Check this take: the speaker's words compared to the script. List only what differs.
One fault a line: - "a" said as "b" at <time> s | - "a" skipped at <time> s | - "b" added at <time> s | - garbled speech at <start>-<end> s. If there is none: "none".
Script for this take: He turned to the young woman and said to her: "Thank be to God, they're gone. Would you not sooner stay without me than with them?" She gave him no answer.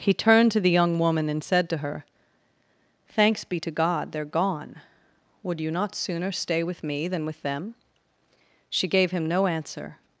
- "Thank" said as "Thanks" at 3.1 s
- "without" said as "with" at 6.6 s